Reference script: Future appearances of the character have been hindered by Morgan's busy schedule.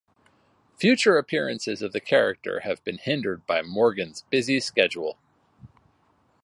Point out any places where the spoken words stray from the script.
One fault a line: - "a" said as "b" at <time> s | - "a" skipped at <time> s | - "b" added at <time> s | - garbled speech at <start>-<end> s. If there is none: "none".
none